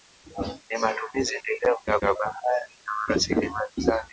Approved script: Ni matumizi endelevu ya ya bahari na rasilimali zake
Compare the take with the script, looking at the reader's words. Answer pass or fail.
pass